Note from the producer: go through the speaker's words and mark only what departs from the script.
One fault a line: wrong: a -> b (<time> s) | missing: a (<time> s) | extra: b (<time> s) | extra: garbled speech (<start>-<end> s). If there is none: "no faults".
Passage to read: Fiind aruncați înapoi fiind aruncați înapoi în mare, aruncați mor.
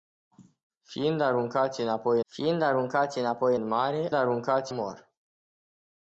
no faults